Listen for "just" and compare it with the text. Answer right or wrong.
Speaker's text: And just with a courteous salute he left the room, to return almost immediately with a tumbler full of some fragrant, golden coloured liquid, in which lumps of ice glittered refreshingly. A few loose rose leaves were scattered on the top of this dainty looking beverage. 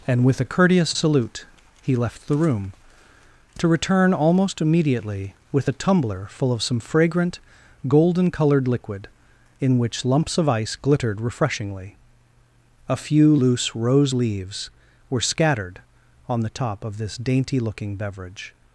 wrong